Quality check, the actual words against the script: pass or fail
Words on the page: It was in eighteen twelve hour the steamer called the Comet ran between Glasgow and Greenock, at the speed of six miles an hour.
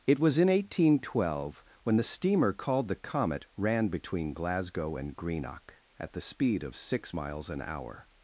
fail